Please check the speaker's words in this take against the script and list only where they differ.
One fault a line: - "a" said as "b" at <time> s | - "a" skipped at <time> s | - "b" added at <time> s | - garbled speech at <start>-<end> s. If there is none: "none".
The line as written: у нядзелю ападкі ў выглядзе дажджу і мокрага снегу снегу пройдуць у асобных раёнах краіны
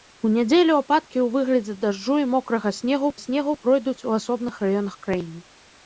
none